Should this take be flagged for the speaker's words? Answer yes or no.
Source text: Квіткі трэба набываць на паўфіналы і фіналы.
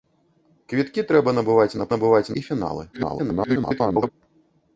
yes